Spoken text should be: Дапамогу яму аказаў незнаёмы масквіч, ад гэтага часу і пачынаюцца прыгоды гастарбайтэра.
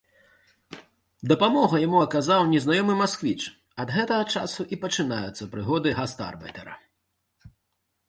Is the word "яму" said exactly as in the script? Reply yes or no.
yes